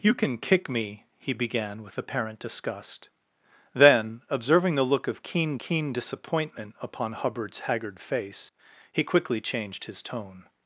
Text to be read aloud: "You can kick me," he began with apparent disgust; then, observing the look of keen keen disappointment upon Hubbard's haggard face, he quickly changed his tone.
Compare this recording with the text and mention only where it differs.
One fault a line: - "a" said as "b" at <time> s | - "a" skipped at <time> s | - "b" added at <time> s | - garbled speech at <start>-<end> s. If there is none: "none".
none